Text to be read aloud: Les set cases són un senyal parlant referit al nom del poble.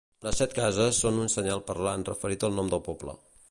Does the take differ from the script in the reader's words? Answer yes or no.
no